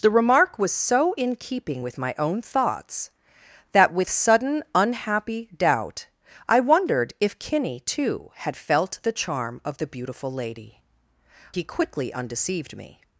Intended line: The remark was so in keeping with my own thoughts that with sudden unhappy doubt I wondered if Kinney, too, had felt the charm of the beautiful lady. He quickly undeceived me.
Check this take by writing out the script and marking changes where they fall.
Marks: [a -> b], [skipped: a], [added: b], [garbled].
The remark was so in keeping with my own thoughts that with sudden unhappy doubt I wondered if Kinney, too, had felt the charm of the beautiful lady. He quickly undeceived me.